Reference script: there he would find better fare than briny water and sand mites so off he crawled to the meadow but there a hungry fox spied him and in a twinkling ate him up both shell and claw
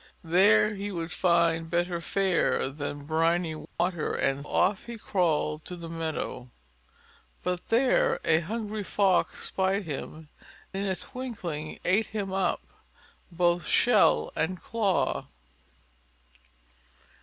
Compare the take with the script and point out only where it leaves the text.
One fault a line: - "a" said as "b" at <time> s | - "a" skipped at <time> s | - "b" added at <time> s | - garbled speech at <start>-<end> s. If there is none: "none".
- "sand mites so" skipped at 4.5 s
- "and" skipped at 10.3 s